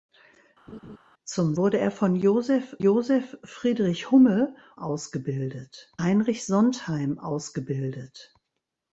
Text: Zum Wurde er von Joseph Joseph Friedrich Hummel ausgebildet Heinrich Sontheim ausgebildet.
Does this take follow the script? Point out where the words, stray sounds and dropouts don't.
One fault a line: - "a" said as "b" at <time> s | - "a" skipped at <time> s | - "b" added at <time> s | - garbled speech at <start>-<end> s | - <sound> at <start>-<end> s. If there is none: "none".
- laugh at 0.7-1.0 s